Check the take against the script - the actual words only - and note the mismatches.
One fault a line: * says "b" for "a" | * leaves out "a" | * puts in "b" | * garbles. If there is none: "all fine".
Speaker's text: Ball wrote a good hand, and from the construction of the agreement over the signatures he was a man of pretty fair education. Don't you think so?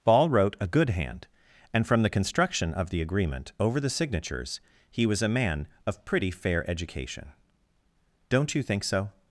all fine